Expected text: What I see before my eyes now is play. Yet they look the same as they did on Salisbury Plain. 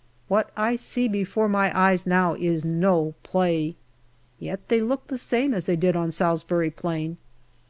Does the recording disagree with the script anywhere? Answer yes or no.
yes